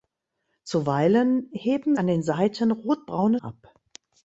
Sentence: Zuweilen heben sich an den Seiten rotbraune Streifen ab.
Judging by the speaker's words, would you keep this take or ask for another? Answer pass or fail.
fail